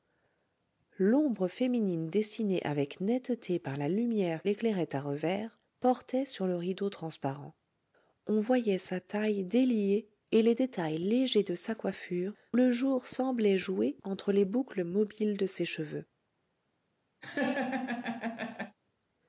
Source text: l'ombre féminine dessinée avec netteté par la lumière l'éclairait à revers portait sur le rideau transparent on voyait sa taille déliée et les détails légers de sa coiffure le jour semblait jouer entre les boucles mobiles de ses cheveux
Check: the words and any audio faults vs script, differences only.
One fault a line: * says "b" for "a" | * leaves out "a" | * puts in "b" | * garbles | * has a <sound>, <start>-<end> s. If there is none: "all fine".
* has a laugh, 17.2-18.8 s